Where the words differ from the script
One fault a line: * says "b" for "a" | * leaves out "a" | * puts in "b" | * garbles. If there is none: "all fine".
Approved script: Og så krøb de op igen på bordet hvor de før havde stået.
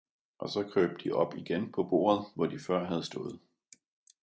all fine